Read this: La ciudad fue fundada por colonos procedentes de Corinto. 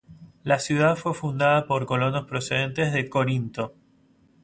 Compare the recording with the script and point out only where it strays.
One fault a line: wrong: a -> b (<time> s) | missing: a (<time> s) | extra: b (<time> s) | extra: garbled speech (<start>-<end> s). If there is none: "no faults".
no faults